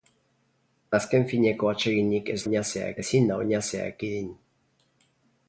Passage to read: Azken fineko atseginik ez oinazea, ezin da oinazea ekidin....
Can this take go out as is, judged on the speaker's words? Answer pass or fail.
pass